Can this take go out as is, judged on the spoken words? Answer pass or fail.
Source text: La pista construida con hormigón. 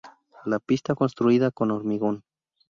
pass